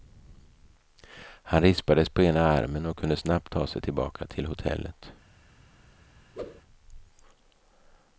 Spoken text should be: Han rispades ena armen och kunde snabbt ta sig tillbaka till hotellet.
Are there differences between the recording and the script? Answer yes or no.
yes